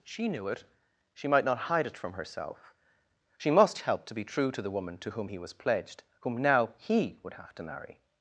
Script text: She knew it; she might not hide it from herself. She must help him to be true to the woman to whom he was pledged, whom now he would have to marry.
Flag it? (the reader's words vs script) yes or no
yes